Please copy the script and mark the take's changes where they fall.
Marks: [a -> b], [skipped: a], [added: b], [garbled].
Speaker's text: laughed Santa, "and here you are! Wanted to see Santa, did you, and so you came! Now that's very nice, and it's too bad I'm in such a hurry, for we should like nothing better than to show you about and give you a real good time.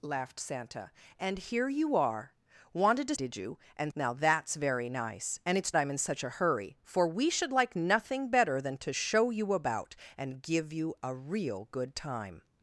laughed Santa, "and here you are! Wanted to [skipped: see Santa,] did you, and [skipped: so you came!] Now that's very nice, and it's [skipped: too bad] I'm in such a hurry, for we should like nothing better than to show you about and give you a real good time.